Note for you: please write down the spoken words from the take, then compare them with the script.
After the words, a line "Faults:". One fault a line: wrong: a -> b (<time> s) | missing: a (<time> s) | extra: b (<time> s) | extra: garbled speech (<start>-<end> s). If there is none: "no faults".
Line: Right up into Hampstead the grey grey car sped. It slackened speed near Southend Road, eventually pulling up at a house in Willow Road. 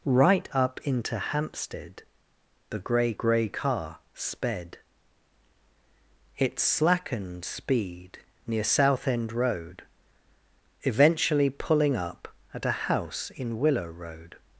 Right up into Hampstead the grey grey car sped. It slackened speed near Southend Road, eventually pulling up at a house in Willow Road.
Faults:
no faults